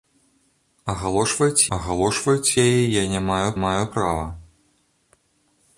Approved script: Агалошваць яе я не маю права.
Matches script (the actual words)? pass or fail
fail